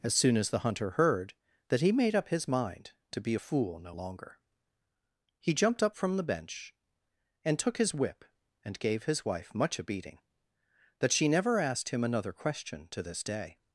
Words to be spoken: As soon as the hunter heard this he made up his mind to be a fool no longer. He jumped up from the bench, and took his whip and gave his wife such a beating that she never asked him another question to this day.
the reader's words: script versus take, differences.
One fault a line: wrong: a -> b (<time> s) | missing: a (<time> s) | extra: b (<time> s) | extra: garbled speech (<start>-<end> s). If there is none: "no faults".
wrong: this -> that (1.7 s)
wrong: such -> much (9.5 s)